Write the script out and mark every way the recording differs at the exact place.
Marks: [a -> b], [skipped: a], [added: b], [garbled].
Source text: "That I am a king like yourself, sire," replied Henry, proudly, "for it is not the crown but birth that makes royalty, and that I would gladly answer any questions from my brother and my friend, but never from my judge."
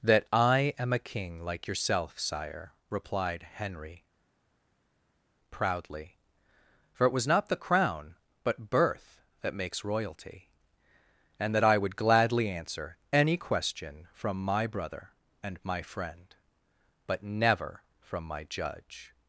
"That I am a king like yourself, sire," replied Henry, proudly, "for it [is -> was] not the crown but birth that makes royalty, and that I would gladly answer any [questions -> question] from my brother and my friend, but never from my judge."